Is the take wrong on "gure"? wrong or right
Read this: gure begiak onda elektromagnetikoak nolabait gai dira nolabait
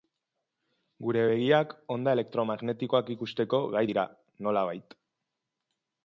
right